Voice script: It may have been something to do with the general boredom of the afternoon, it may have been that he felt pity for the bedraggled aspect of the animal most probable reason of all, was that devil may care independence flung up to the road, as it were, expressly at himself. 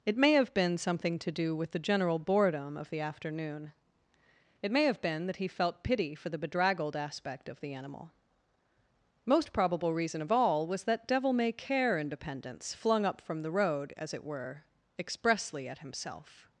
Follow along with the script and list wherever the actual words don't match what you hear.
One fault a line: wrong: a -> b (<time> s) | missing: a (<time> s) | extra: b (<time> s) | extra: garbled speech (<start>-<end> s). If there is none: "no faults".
wrong: to -> from (13.2 s)